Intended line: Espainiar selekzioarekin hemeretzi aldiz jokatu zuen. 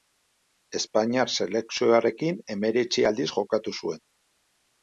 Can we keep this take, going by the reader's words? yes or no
yes